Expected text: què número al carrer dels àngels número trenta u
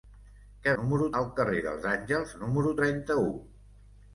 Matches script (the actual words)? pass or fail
pass